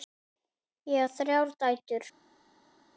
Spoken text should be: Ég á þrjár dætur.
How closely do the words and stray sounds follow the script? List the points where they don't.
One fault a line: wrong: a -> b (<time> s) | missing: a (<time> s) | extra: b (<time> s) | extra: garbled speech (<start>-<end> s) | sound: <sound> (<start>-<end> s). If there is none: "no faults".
no faults